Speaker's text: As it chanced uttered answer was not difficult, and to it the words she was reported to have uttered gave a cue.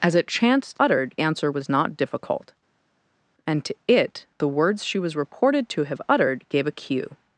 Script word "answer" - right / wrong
right